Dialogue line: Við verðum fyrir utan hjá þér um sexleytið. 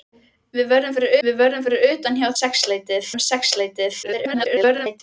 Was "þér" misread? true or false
true